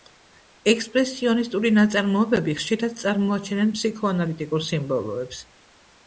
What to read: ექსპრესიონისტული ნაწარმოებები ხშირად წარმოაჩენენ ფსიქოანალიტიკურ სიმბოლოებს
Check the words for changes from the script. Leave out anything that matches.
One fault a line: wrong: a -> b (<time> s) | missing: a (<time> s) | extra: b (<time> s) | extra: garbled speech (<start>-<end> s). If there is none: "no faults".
no faults